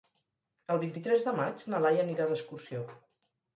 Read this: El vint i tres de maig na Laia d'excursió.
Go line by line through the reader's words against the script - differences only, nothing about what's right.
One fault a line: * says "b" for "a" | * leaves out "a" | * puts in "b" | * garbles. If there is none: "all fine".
* puts in "anirà"